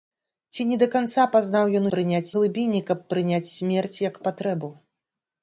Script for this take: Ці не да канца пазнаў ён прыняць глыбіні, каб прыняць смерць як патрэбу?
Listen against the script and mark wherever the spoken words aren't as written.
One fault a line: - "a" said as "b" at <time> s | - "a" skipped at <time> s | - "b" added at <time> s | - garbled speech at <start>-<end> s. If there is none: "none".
none